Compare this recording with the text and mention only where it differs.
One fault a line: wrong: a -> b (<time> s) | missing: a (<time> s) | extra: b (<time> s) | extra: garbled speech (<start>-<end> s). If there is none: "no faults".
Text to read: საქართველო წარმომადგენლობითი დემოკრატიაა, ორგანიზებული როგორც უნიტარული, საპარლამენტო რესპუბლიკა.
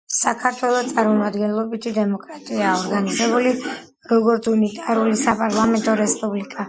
no faults